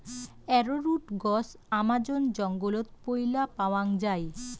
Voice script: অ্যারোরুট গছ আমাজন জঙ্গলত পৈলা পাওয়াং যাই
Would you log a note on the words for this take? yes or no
no